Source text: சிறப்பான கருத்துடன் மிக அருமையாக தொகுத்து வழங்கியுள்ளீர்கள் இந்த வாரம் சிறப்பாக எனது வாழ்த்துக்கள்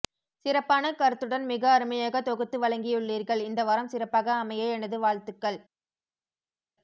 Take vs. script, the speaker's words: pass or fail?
fail